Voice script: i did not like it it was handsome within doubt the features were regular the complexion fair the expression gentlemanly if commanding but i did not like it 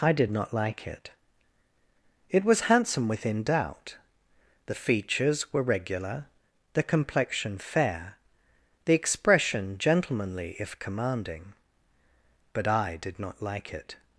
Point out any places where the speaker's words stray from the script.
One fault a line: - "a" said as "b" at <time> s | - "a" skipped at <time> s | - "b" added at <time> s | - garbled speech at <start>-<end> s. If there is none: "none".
none